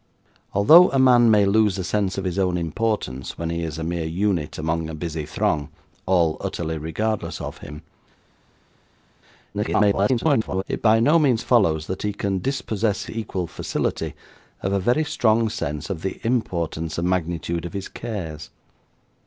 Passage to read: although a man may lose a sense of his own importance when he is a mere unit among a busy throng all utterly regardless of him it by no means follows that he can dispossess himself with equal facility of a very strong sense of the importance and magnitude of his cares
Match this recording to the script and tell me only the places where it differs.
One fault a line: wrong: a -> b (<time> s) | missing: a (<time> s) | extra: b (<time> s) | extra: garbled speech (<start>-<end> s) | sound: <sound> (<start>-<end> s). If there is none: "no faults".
extra: garbled speech (9.5-10.6 s)
missing: himself with (13.0 s)